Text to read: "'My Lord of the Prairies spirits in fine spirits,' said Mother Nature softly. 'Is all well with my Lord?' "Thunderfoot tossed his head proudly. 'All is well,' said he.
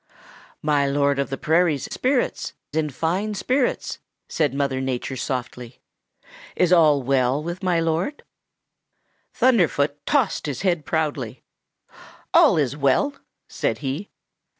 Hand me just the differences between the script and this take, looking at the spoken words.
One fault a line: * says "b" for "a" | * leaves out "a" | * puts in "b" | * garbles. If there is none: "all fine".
all fine